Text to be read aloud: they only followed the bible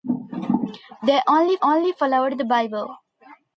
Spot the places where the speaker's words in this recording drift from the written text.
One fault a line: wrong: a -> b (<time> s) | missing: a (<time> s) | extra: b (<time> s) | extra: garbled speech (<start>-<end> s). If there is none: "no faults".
extra: only (1.6 s)